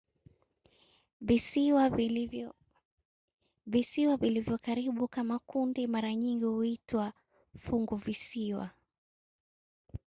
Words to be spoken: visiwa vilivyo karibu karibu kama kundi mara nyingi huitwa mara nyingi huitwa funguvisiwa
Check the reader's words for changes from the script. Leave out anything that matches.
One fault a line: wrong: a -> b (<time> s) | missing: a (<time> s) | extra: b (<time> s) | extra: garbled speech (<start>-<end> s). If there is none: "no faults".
missing: karibu (5.1 s)
missing: mara nyingi huitwa (7.1 s)